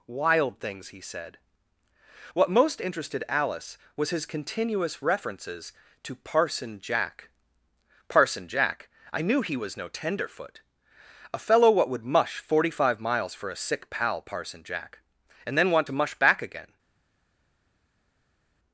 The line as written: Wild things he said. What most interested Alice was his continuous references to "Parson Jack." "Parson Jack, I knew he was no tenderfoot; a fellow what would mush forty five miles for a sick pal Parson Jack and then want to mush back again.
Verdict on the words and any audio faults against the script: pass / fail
pass